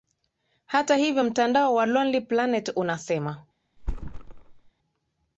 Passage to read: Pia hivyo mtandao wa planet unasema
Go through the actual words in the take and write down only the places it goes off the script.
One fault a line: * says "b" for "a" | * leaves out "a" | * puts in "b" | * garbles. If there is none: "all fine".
* says "Hata" for "Pia"
* puts in "lonely"